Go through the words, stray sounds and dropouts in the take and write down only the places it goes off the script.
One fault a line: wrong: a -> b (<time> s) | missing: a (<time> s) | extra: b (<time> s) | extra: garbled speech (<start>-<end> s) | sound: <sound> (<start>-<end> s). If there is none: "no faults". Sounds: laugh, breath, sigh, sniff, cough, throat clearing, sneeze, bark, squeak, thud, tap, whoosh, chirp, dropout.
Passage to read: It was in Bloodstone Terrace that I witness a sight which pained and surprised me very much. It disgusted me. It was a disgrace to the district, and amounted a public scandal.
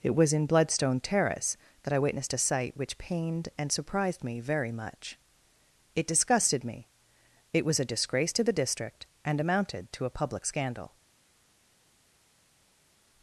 wrong: witness -> witnessed (2.0 s)
extra: to (9.9 s)